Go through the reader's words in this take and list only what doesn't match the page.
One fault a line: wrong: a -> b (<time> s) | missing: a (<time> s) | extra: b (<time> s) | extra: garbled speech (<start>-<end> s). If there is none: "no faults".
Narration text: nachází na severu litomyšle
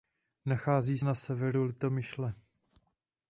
no faults